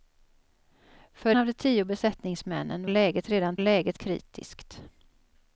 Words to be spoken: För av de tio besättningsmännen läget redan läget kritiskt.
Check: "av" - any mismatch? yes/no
no